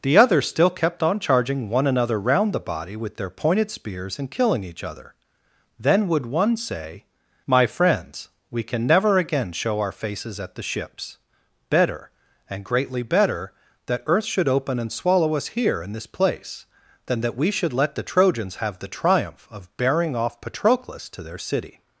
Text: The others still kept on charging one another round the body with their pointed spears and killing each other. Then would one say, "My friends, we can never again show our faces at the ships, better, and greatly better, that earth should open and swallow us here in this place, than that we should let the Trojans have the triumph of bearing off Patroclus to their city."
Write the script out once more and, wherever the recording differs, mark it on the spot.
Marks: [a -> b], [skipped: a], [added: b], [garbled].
The others still kept on charging one another round the body with their pointed spears and killing each other. Then would one say, "My friends, we can never again show our faces at the ships, better, and greatly better, that earth should open and swallow us here in this place, than that we should let the Trojans have the triumph of bearing off Patroclus to their city."